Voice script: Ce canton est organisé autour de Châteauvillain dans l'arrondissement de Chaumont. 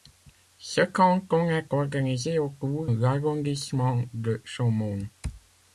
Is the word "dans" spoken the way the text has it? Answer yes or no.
no